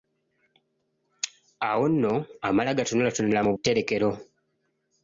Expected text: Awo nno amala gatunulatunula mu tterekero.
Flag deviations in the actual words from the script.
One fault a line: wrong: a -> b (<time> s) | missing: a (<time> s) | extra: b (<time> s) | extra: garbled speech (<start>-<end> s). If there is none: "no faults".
no faults